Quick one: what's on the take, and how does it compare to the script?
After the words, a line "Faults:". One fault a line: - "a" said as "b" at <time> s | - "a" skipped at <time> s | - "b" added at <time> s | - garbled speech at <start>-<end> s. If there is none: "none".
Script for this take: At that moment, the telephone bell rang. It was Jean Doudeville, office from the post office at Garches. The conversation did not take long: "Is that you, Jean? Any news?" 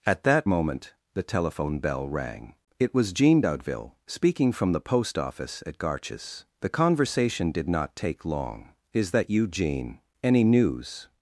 At that moment, the telephone bell rang. It was Jean Doudeville, speaking from the post office at Garches. The conversation did not take long: "Is that you, Jean? Any news?"
Faults:
- "office" said as "speaking" at 4.1 s